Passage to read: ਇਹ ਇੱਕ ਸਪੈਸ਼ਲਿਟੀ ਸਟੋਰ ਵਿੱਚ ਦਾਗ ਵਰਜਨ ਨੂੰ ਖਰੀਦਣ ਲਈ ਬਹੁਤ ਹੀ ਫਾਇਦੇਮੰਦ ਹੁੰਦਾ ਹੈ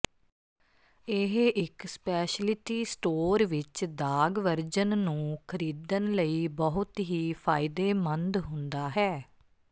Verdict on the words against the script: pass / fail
pass